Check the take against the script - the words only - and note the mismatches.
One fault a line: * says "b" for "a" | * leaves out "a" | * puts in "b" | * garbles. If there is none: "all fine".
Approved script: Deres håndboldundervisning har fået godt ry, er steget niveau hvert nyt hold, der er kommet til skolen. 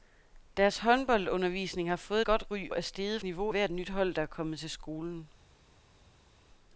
all fine